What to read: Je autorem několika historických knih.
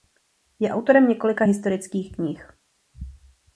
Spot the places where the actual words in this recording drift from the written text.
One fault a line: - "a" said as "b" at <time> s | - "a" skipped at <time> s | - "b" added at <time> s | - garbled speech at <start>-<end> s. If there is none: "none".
none